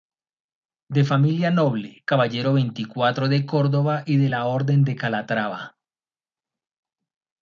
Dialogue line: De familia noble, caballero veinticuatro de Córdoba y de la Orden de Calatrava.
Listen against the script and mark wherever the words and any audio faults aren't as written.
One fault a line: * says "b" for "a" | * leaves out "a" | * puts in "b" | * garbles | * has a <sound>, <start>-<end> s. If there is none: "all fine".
all fine